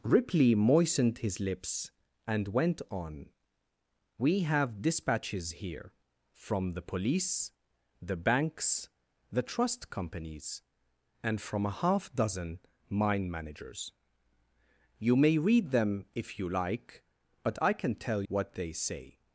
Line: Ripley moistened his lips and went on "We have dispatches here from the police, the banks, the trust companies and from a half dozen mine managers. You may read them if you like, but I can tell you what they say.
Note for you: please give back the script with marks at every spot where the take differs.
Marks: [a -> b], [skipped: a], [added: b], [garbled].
Ripley moistened his lips and went on "We have dispatches here from the police, the banks, the trust companies and from a half dozen mine managers. You may read them if you like, but I can tell [skipped: you] what they say.